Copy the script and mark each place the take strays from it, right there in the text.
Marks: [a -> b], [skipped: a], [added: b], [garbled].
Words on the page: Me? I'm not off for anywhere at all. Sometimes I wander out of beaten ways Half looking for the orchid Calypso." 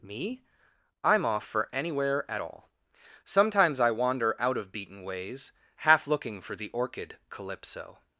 Me? I'm [skipped: not] off for anywhere at all. Sometimes I wander out of beaten ways Half looking for the orchid Calypso."